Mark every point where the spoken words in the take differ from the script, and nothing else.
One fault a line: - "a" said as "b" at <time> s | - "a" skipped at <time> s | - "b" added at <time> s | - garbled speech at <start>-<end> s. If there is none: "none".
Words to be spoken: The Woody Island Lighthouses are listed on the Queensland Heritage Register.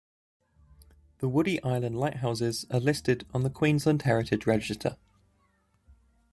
none